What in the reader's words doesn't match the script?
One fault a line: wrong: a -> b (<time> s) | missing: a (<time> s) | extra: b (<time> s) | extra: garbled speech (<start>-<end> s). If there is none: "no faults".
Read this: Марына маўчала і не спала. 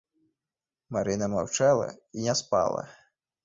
no faults